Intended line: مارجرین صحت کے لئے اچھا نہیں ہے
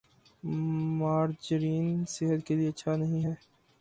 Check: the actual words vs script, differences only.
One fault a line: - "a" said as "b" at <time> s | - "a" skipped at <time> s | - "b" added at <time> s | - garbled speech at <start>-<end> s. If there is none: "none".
none